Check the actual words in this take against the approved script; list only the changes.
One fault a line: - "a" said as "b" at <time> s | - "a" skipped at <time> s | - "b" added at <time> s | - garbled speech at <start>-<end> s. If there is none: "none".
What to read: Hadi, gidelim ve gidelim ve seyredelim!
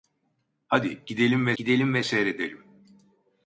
none